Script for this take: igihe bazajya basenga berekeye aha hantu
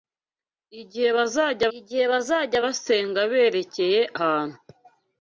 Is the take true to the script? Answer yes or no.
no